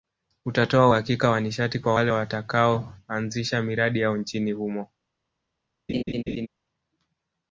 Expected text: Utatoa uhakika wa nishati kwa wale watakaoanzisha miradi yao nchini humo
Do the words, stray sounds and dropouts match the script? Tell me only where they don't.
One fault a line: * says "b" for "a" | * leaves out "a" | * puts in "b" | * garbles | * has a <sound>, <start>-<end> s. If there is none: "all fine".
* has a laugh, 5.9-6.5 s